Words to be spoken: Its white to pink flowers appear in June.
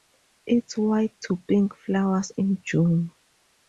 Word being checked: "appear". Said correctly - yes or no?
no